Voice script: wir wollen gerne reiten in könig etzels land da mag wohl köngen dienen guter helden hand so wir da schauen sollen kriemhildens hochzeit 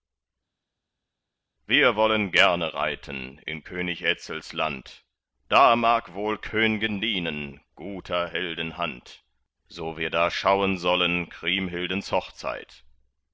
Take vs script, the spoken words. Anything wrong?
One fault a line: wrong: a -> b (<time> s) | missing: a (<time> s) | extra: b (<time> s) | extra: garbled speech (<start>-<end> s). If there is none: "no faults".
no faults